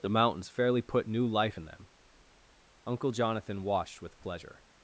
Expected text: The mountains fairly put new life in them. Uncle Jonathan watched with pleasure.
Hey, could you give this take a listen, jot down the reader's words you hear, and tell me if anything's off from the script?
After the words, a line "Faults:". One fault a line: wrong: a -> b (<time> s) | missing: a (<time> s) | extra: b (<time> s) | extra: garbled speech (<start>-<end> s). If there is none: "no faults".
The mountains fairly put new life in them. Uncle Jonathan watched with pleasure.
Faults:
no faults